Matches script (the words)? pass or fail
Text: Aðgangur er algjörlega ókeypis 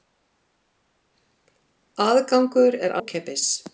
fail